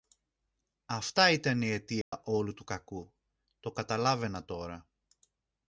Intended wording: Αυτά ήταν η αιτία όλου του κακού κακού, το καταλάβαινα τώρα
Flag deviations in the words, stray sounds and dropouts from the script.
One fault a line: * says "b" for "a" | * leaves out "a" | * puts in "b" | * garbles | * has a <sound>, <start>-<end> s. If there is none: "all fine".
* has a dropout, 2.0-2.1 s
* leaves out "κακού"